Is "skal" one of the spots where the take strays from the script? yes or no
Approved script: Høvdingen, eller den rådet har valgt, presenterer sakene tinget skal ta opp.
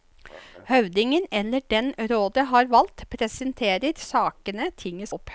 yes